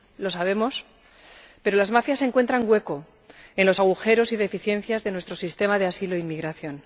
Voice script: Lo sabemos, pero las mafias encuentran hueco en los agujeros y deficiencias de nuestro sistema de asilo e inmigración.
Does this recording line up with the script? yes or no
yes